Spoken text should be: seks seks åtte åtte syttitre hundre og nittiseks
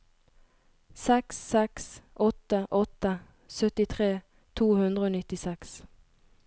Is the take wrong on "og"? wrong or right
right